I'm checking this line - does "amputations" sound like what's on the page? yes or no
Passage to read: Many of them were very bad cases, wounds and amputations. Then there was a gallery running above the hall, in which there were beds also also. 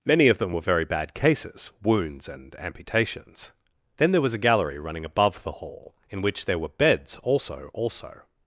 yes